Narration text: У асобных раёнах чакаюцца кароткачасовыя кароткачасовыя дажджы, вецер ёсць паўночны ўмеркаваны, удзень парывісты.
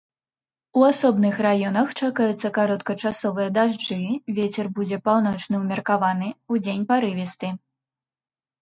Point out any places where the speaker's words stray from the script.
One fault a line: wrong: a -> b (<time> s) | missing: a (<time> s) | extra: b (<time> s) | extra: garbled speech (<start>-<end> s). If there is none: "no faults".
missing: кароткачасовыя (3.5 s)
wrong: ёсць -> будзе (4.8 s)